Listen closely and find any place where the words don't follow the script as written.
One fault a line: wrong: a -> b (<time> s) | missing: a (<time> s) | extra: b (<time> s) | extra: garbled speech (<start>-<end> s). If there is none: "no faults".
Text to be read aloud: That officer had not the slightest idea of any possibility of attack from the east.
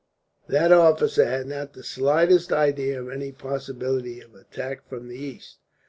no faults